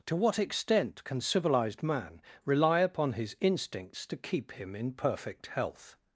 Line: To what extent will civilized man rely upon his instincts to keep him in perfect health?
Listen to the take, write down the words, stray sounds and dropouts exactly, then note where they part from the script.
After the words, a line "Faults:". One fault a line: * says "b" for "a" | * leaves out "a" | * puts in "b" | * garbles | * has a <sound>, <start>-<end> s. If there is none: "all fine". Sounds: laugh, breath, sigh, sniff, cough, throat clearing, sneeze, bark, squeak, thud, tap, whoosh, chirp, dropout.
To what extent can civilized man rely upon his instincts to keep him in perfect health?
Faults:
* says "can" for "will"